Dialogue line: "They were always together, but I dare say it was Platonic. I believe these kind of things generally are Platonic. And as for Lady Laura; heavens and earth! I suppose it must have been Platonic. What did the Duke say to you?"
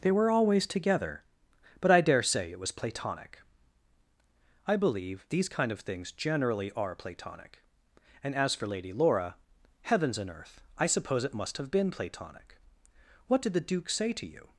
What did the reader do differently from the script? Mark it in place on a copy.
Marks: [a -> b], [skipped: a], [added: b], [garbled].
"They were always together, but I dare say it was Platonic. I believe these kind of things generally are Platonic. And as for Lady Laura; heavens and earth! I suppose it must have been Platonic. What did the Duke say to you?"